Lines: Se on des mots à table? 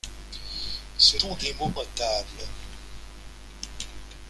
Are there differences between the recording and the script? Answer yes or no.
no